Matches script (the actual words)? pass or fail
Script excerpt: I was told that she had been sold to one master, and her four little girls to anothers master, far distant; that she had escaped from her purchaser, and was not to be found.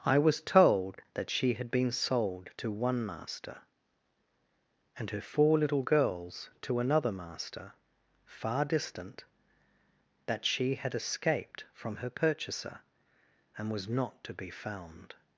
fail